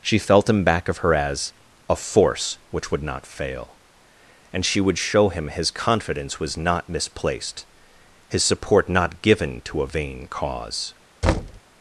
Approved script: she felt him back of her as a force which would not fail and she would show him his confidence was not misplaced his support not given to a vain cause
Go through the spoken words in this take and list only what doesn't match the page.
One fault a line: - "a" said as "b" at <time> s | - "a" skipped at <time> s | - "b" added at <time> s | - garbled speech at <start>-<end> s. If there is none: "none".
none